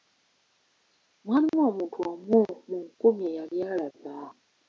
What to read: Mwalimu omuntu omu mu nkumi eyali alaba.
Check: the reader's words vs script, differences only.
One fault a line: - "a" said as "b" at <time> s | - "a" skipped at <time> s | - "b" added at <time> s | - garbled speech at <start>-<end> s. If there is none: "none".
none